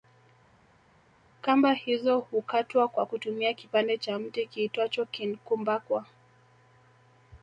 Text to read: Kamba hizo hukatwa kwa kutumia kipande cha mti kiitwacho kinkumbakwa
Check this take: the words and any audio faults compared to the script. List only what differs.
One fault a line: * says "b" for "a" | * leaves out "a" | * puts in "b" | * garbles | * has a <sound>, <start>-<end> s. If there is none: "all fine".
all fine